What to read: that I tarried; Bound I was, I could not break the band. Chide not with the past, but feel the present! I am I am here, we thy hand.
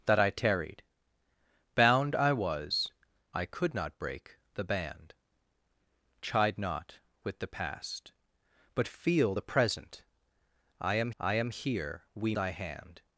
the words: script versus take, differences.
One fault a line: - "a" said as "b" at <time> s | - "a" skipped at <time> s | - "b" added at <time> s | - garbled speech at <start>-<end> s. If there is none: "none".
none